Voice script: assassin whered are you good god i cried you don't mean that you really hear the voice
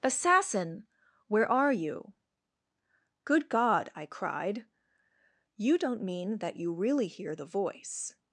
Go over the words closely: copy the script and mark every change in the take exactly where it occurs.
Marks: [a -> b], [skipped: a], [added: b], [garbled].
assassin [whered -> where] are you good god i cried you don't mean that you really hear the voice